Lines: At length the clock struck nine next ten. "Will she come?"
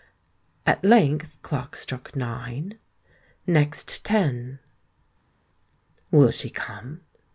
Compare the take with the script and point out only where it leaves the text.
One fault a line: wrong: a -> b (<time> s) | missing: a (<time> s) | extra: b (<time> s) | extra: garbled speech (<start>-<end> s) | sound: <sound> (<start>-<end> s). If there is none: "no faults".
missing: the (1.4 s)